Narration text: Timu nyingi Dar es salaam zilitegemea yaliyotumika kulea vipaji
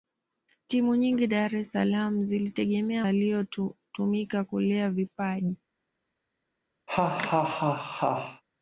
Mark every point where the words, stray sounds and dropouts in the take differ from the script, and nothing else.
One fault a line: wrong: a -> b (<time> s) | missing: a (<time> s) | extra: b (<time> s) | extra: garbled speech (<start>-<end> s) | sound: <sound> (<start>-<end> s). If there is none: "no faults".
sound: laugh (6.9-8.4 s)